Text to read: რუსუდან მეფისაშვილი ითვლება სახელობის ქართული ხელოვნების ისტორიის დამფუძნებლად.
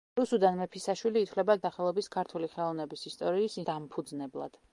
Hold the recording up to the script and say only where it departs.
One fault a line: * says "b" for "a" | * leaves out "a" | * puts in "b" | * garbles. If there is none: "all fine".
all fine